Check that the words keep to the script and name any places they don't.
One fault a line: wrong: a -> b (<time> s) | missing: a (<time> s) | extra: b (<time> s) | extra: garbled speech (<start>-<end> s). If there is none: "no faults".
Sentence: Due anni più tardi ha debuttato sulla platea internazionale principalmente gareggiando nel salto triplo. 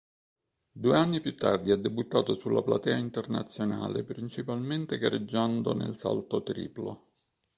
no faults